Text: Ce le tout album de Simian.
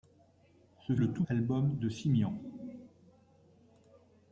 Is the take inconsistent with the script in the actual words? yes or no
no